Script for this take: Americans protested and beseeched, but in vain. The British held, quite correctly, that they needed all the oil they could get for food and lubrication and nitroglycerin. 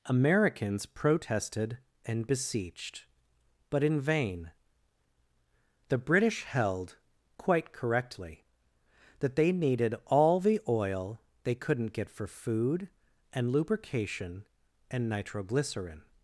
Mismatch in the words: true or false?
true